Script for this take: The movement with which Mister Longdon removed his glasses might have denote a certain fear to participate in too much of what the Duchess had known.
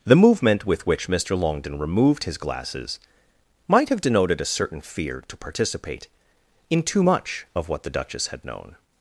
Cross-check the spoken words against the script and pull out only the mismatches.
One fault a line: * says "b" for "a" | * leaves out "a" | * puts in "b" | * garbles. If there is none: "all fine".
* says "denoted" for "denote"